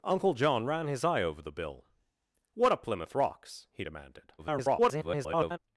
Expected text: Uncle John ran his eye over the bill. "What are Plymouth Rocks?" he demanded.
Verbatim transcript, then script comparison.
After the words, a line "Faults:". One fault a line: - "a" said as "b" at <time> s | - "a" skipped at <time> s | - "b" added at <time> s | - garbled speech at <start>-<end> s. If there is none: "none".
Uncle John ran his eye over the bill. "What are Plymouth Rocks?" he demanded. [garbled]
Faults:
- garbled speech at 4.4-5.6 s